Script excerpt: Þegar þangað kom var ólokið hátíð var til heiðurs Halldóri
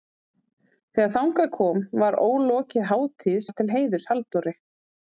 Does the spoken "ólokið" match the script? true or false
true